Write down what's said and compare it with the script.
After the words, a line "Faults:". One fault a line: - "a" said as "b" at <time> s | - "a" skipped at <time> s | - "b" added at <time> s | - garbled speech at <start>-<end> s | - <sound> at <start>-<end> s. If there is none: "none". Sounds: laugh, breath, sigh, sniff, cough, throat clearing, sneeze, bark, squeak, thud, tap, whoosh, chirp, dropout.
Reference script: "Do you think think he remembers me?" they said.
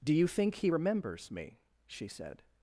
"Do you think he remembers me?" she said.
Faults:
- "think" skipped at 0.6 s
- "they" said as "she" at 1.9 s